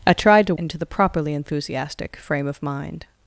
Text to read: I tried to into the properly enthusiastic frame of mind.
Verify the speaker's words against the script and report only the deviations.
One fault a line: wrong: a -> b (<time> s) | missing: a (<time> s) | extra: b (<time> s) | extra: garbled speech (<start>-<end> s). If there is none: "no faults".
no faults